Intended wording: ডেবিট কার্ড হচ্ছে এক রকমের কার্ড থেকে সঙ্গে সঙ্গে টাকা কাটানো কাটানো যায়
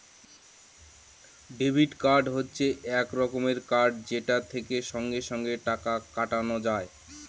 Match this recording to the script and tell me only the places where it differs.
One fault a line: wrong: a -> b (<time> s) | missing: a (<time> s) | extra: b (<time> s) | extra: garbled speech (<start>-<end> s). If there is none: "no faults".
extra: যেটা (4.1 s)
missing: কাটানো (6.6 s)